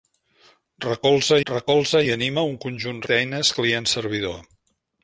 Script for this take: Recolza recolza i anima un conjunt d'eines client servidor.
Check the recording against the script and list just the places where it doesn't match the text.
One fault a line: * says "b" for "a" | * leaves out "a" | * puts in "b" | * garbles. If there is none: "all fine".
all fine